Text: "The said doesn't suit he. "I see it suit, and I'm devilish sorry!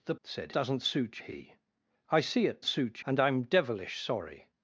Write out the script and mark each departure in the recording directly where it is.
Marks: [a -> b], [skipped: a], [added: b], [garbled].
"The said doesn't suit he. "I see it suit, and I'm devilish sorry!